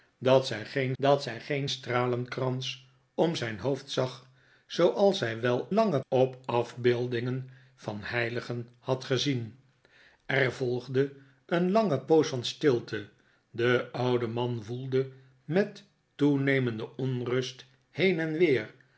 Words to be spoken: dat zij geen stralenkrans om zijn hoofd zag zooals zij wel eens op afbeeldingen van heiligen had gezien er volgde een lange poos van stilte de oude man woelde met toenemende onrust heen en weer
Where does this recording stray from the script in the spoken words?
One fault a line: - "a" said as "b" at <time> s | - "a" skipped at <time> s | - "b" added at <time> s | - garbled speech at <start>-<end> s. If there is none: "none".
- "dat zij geen" added at 1.0 s
- "eens" said as "lange" at 5.7 s